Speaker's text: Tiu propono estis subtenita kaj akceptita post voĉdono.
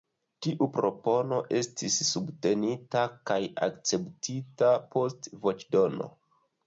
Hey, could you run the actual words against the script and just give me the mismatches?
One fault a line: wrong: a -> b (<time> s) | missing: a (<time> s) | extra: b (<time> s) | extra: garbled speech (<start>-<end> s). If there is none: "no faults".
no faults